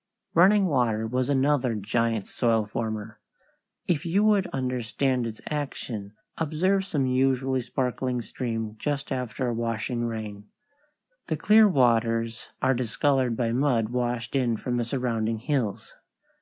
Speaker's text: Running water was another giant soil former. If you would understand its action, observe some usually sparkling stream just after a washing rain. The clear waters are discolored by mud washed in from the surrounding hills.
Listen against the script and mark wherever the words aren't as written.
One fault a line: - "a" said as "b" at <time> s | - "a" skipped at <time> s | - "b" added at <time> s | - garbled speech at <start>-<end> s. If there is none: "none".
none